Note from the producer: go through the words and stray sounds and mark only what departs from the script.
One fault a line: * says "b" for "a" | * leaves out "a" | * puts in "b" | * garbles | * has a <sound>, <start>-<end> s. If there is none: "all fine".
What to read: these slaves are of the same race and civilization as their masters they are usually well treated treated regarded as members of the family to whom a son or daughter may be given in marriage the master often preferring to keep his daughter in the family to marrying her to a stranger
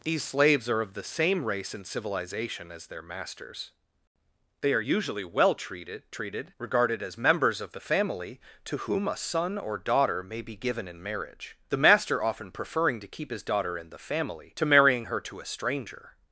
all fine